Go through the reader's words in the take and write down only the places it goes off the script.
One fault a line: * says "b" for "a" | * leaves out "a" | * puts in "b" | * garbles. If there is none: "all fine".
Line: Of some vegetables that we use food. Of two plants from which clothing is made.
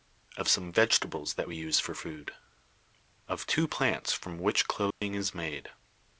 * puts in "for"